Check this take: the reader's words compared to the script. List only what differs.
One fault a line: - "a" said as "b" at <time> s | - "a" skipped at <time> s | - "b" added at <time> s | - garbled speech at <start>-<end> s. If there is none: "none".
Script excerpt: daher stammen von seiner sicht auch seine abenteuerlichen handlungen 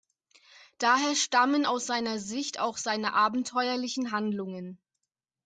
- "von" said as "aus" at 1.6 s